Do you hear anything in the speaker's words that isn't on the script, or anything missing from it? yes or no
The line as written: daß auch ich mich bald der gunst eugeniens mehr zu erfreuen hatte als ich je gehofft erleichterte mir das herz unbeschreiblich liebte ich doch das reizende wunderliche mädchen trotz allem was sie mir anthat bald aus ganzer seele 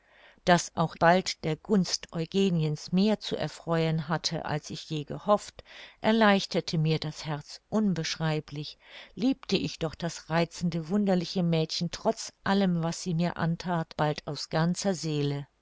yes